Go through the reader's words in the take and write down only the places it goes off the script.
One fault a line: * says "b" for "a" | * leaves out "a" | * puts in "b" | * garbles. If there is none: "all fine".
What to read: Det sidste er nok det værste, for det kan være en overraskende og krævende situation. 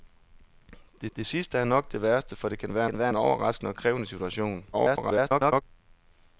* puts in "det"
* puts in "kan være"
* garbles